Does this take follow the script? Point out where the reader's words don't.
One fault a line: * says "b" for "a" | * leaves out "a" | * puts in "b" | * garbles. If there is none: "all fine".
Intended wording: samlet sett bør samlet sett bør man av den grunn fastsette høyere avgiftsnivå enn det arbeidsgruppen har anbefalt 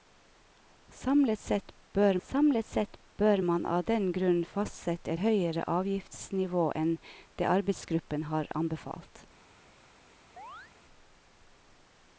all fine